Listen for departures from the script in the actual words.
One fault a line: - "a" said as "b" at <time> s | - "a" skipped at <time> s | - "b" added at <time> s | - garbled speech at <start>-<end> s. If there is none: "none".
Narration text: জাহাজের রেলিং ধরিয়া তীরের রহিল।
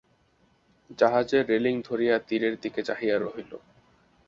- "দিকে চাহিয়া" added at 2.6 s